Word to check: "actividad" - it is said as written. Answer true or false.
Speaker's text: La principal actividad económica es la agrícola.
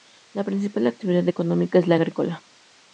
true